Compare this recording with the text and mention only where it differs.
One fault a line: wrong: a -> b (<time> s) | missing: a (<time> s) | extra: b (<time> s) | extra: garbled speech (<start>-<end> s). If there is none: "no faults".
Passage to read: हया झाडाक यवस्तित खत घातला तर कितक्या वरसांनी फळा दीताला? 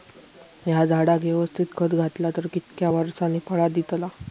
no faults